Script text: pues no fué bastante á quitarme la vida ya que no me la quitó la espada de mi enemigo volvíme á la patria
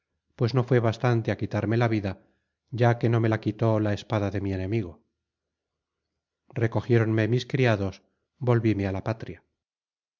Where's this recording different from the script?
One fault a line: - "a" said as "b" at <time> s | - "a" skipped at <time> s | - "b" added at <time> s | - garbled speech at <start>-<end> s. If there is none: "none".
- "recogiéronme mis criados" added at 6.6 s